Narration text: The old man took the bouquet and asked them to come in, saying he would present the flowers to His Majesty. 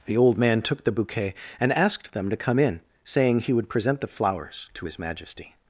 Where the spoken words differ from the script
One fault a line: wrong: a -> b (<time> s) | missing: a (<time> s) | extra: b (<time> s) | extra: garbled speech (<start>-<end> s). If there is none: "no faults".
no faults